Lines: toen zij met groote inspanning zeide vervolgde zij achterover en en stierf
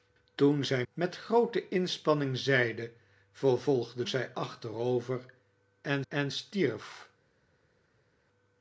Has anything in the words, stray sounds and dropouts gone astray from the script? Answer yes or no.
no